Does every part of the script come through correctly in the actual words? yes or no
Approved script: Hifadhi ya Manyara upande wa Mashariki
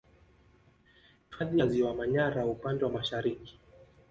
no